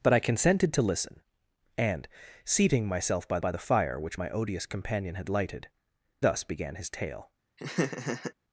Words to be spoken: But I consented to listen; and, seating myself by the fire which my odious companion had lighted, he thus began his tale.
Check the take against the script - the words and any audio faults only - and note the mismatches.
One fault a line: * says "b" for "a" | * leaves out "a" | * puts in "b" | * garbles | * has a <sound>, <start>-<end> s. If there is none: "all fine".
* puts in "by"
* leaves out "he"
* has a laugh, 7.6-8.3 s